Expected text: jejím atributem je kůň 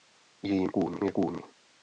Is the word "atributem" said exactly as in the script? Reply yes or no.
no